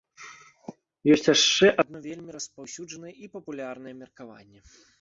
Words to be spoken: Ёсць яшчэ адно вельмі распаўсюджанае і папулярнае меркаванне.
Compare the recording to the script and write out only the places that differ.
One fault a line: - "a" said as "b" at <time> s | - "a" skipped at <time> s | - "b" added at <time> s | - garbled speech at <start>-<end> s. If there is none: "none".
none